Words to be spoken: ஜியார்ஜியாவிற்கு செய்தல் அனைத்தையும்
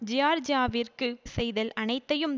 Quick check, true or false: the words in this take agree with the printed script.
true